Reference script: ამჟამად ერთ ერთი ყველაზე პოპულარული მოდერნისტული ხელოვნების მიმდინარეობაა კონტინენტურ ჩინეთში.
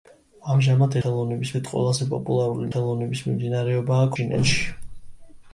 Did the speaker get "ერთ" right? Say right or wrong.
wrong